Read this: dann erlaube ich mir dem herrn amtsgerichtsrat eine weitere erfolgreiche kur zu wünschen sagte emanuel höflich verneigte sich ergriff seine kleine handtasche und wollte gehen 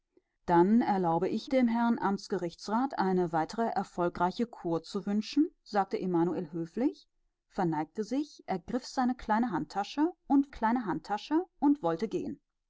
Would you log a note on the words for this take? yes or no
yes